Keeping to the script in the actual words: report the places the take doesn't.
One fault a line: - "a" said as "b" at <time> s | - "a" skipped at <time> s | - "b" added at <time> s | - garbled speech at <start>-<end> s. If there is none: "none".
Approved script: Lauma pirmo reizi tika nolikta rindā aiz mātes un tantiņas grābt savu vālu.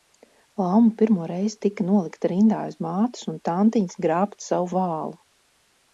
none